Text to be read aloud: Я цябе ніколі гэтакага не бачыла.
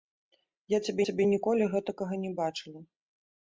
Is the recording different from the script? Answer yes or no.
yes